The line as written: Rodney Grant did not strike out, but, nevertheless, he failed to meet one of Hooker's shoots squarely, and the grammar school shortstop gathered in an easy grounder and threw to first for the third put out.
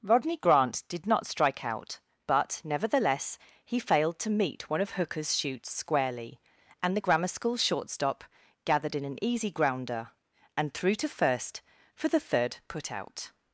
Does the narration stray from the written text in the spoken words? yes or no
no